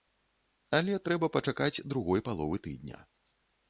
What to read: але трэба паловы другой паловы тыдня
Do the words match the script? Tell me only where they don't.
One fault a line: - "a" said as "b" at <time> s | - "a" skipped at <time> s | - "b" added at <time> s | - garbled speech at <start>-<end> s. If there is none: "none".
- "паловы" said as "пачакаць" at 1.4 s